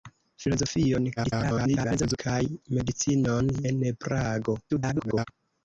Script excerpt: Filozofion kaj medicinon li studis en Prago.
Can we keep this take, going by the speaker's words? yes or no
no